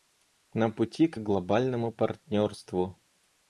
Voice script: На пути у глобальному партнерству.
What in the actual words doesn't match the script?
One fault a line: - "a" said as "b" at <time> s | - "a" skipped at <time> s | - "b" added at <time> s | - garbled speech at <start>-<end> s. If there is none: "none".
- "у" said as "к" at 1.1 s